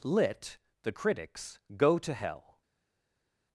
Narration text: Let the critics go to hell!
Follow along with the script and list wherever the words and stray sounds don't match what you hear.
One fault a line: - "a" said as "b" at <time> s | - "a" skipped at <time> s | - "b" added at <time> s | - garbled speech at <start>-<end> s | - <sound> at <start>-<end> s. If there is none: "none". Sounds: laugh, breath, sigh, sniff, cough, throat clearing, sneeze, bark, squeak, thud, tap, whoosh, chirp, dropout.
- "Let" said as "Lit" at 0.0 s